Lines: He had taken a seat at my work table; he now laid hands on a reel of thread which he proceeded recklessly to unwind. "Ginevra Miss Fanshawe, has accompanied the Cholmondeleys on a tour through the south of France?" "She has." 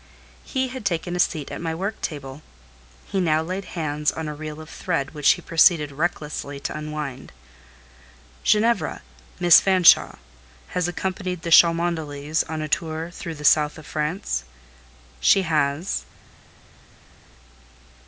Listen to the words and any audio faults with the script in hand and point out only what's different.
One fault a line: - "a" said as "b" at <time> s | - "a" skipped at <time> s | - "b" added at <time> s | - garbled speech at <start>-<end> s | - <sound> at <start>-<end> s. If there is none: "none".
none